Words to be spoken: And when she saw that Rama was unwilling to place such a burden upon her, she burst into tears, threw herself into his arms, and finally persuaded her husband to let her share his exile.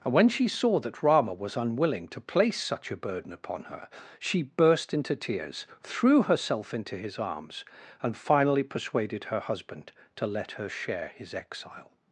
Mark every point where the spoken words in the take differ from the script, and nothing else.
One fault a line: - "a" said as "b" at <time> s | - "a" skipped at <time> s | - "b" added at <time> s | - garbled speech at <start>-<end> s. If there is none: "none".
none